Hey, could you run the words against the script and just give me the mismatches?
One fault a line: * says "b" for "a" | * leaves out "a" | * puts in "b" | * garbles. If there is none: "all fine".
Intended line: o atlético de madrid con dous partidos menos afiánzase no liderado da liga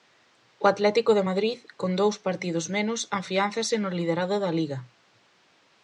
all fine